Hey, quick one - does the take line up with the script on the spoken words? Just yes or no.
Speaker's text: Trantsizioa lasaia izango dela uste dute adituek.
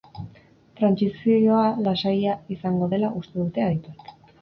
yes